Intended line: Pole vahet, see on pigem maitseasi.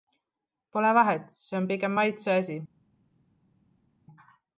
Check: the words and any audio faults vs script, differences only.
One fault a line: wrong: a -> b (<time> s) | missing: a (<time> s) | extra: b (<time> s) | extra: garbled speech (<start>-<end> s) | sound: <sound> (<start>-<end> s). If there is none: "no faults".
no faults